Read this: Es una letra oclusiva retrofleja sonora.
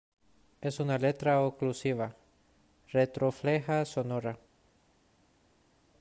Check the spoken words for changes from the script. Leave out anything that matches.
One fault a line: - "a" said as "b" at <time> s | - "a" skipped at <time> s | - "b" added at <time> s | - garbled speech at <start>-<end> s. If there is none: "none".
none